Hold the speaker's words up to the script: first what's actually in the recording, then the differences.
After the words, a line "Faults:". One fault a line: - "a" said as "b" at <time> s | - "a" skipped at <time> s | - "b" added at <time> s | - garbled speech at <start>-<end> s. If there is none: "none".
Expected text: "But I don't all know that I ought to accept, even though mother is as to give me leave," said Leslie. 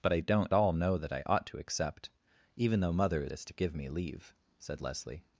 "But I don't all know that I ought to accept, even though mother is as to give me leave," said Leslie.
Faults:
none